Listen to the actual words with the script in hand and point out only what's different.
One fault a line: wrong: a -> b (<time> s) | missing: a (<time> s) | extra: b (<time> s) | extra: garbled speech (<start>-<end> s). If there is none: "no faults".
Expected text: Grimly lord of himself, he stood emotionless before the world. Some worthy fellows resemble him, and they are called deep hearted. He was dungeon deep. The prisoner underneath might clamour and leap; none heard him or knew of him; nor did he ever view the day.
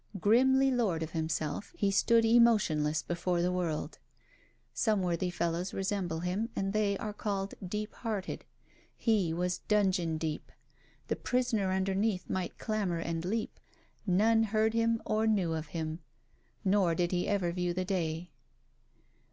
no faults